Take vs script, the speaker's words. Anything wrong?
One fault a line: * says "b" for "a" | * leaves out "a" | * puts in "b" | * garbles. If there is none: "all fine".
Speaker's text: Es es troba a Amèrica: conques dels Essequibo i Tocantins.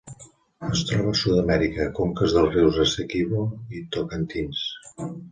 * leaves out "es"
* puts in "Sud"
* puts in "rius"